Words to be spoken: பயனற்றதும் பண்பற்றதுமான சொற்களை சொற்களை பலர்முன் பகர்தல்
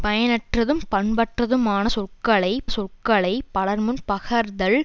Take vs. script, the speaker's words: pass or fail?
pass